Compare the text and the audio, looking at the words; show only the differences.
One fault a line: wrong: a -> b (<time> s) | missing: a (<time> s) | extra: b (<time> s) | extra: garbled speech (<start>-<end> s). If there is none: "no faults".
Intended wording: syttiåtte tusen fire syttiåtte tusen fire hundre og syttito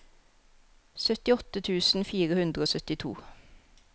missing: syttiåtte tusen fire (2.4 s)